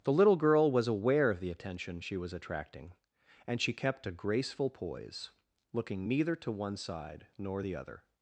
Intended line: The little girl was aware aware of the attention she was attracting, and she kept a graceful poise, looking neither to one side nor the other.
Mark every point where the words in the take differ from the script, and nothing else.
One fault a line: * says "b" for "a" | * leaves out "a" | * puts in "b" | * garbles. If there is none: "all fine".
* leaves out "aware"